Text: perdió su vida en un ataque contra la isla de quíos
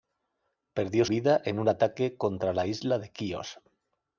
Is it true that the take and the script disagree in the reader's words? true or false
true